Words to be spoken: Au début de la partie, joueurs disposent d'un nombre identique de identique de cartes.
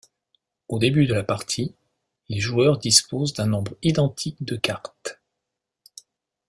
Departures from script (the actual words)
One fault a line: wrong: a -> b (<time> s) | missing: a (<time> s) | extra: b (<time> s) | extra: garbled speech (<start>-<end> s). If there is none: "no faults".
extra: les (2.3 s)
missing: identique de (4.6 s)